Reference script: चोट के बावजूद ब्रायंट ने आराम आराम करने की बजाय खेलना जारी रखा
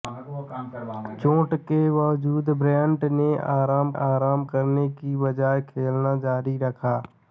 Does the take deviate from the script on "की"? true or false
false